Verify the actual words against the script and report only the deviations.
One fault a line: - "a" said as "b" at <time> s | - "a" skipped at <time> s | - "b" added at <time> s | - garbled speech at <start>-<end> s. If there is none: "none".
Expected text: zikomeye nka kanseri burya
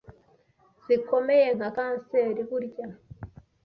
none